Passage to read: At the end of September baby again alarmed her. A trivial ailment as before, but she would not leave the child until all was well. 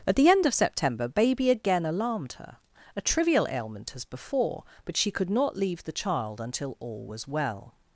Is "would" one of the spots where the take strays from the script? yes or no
yes